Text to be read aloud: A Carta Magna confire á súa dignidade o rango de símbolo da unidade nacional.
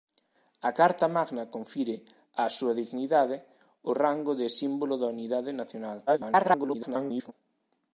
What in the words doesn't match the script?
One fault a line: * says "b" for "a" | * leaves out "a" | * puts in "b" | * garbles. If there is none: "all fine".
* garbles